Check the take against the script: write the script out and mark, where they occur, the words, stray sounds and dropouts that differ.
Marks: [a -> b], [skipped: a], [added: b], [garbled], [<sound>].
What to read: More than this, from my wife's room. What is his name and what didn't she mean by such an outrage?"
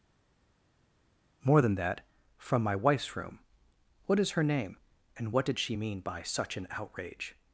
More than [this, -> that] from my wife's room. What is [his -> her] name and what [didn't -> did] she mean by such an outrage?"